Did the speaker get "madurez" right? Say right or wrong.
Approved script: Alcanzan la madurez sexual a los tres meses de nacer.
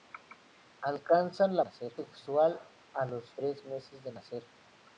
wrong